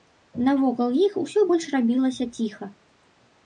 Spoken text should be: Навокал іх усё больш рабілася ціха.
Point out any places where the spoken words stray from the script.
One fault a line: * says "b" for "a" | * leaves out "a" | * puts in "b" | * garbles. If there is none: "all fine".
all fine